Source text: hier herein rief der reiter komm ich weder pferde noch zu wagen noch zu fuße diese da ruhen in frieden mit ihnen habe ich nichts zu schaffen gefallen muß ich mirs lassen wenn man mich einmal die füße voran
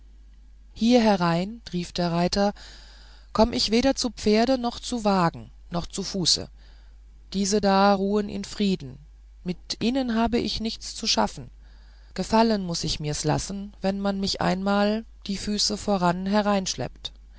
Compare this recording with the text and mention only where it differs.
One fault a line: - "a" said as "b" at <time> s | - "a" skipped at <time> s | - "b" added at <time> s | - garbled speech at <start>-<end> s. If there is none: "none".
- "zu" added at 4.0 s